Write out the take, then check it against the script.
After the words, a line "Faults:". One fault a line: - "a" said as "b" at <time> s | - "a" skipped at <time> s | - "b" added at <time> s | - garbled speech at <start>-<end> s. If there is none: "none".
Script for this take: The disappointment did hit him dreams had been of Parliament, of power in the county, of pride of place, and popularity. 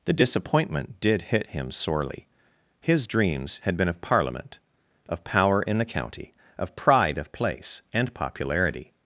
The disappointment did hit him sorely. His dreams had been of Parliament, of power in the county, of pride of place, and popularity.
Faults:
- "sorely His" added at 1.7 s